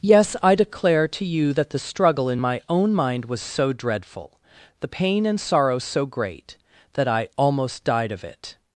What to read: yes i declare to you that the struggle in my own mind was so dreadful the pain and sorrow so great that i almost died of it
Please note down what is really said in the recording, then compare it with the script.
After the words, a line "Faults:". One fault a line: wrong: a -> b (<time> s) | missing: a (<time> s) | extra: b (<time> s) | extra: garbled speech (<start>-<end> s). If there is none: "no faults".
yes i declare to you that the struggle in my own mind was so dreadful the pain and sorrow so great that i almost died of it
Faults:
no faults